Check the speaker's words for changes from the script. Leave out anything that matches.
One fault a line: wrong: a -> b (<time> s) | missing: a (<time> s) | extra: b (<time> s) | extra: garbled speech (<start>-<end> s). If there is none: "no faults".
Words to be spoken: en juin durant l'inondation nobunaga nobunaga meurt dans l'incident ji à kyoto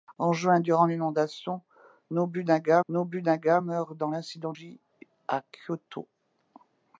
no faults